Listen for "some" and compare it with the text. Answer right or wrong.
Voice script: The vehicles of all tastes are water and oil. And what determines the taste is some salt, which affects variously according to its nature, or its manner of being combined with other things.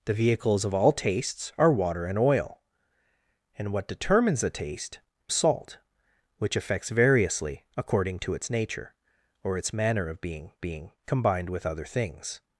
wrong